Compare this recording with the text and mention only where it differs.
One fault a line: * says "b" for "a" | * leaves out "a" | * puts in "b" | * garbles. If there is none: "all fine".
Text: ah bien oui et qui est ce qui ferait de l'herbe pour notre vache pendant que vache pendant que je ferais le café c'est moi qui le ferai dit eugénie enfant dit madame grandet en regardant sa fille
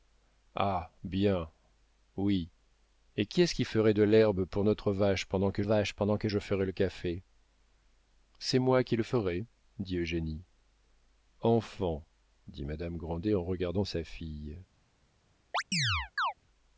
all fine